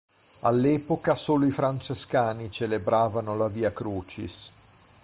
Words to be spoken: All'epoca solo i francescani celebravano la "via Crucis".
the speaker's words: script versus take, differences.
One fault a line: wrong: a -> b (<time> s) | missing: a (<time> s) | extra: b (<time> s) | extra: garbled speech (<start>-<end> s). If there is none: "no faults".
no faults